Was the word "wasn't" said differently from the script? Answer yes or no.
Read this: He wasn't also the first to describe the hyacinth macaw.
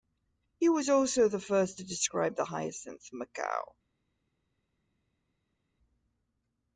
yes